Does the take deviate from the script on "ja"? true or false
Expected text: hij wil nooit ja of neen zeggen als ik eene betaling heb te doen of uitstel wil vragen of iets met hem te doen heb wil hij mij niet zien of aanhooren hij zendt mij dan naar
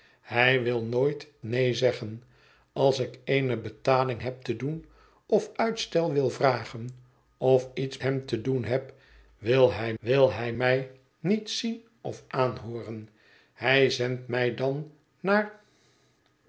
true